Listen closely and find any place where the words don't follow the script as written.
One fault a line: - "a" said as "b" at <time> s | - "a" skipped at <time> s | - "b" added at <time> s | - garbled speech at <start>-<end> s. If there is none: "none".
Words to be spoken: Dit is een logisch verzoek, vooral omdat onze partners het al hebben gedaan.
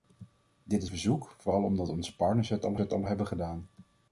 - "een logisch" skipped at 0.9 s
- "het al" added at 2.8 s